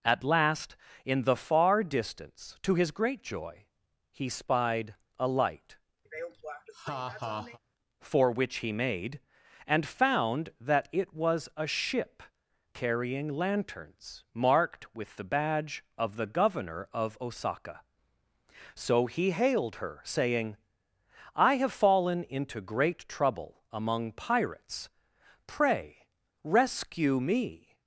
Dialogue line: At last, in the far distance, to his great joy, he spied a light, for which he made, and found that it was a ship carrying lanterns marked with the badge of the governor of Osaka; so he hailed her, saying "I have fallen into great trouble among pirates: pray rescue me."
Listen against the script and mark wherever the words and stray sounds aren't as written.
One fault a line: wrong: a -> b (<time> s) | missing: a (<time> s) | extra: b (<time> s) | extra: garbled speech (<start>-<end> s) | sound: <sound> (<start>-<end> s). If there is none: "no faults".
sound: laugh (6.1-7.6 s)